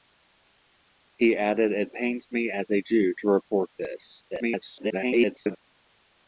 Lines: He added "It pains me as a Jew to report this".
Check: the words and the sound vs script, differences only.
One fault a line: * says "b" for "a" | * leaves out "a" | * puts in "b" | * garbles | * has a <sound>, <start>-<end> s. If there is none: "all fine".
* garbles